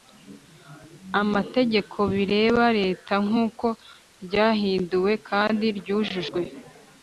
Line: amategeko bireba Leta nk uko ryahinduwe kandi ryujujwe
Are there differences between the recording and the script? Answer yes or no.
no